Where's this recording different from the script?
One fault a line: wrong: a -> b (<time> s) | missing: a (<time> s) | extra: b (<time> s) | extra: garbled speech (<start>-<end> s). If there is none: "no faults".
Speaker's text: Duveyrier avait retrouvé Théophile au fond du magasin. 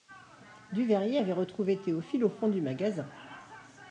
no faults